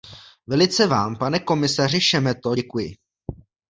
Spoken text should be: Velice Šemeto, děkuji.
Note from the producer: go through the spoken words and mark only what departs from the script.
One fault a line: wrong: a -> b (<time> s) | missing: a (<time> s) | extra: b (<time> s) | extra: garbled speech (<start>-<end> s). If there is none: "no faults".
extra: vám pane komisaři (0.8 s)